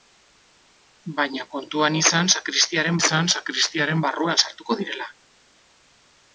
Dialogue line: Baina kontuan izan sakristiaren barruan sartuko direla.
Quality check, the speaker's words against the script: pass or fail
fail